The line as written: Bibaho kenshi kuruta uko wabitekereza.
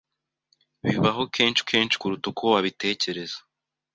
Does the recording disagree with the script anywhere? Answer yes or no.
yes